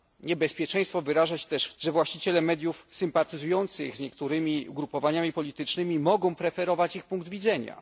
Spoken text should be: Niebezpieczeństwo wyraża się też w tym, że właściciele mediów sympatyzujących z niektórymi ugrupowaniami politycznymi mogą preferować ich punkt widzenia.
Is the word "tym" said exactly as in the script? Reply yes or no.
no